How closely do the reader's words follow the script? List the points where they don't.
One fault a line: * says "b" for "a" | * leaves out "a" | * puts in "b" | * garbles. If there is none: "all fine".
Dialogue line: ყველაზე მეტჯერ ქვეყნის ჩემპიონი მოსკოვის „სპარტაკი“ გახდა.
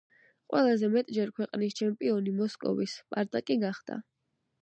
all fine